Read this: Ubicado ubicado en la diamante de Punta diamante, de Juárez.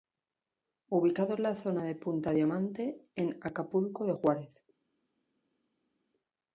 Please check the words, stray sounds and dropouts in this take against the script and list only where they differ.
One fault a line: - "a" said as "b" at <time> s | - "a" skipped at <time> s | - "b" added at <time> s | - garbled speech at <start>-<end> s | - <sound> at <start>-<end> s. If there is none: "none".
- "ubicado" skipped at 1.4 s
- "diamante" said as "zona" at 1.5 s
- "en Acapulco" added at 3.1 s